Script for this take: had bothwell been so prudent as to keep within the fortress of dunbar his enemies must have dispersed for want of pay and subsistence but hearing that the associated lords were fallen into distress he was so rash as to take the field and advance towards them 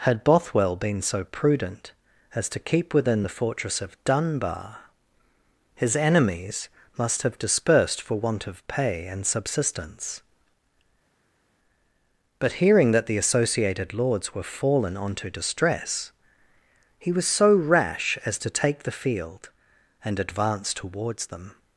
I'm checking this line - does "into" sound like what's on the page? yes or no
no